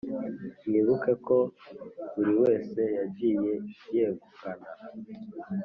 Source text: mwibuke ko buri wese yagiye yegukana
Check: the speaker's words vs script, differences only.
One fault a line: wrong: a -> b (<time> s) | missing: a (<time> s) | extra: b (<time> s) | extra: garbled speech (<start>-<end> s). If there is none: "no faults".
no faults